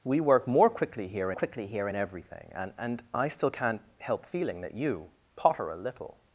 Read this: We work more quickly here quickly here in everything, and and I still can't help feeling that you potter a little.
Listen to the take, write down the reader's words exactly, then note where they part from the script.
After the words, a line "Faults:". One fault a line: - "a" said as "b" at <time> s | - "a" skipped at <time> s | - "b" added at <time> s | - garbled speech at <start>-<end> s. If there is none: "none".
We work more quickly here quickly here in everything, and and I still can't help feeling that you potter a little.
Faults:
none